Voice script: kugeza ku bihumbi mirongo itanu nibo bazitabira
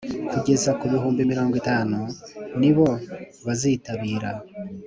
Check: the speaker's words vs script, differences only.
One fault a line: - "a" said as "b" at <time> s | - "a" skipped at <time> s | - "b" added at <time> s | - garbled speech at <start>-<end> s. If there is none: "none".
none